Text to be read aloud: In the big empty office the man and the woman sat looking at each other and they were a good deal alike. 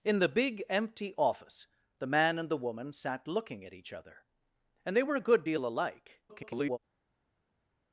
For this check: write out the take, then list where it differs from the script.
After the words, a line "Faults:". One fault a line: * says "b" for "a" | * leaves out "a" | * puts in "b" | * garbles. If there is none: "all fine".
In the big empty office the man and the woman sat looking at each other and they were a good deal alike. [garbled]
Faults:
* garbles